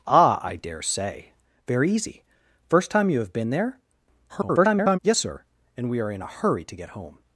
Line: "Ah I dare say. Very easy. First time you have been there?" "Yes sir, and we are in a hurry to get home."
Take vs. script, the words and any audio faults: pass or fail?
fail